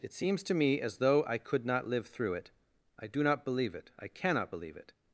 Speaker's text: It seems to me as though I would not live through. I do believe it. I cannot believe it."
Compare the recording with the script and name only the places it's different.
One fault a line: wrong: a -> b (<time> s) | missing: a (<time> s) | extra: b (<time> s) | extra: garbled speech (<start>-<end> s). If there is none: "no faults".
wrong: would -> could (1.4 s)
extra: it (2.3 s)
extra: not (3.2 s)